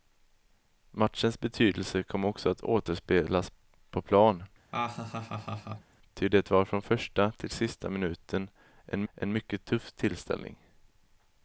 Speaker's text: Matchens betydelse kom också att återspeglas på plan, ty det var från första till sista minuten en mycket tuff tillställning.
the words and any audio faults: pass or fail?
fail